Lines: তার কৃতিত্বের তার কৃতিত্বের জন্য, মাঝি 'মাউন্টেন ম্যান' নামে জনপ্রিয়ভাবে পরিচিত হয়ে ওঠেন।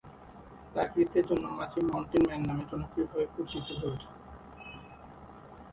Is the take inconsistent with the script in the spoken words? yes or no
yes